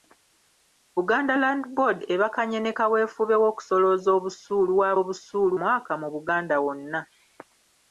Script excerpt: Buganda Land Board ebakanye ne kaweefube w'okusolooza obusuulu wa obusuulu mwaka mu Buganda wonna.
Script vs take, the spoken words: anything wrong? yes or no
no